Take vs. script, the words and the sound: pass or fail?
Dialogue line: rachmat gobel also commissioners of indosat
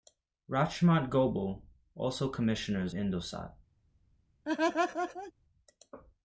fail